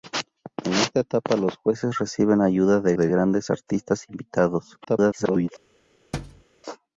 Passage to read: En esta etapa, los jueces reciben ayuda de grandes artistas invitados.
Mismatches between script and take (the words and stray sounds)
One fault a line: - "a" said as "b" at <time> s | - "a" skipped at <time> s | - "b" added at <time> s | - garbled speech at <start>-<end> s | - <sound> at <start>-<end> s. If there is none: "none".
- "de" added at 2.9 s
- garbled speech at 4.8-5.5 s
- thud at 6.1-6.4 s